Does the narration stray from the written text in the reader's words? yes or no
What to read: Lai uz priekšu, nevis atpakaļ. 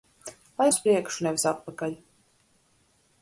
no